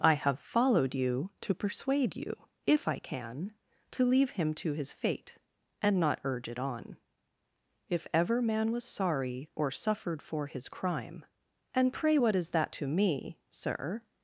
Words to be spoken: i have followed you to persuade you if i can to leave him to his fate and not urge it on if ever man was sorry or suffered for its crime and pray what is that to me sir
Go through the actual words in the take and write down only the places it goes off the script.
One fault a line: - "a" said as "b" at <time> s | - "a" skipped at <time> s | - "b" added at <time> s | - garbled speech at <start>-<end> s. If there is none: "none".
- "its" said as "his" at 10.5 s